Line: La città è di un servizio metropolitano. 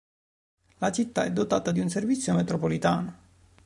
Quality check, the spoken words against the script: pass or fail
fail